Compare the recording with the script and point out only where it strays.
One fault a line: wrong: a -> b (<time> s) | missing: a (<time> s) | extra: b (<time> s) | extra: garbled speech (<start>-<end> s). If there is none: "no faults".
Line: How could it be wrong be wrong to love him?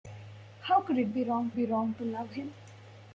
no faults